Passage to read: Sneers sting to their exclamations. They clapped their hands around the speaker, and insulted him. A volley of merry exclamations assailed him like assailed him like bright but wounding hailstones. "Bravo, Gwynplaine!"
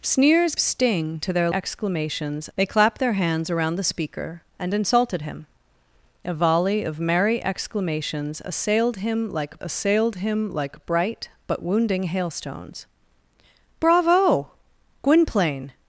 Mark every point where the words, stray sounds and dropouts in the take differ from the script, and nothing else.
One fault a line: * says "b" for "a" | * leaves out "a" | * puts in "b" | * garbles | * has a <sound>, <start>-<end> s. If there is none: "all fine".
all fine